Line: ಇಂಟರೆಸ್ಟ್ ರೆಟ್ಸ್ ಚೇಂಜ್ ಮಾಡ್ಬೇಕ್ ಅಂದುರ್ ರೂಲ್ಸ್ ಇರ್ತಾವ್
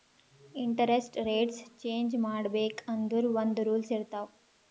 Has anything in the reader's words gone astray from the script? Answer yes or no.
yes